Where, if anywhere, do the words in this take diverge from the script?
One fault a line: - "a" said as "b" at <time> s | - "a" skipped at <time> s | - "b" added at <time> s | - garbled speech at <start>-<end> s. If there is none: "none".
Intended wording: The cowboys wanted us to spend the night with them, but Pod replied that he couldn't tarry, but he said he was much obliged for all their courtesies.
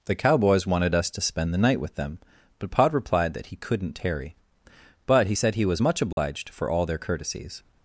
none